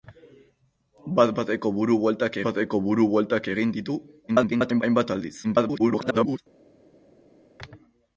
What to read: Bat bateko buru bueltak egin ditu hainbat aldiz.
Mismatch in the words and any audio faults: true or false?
true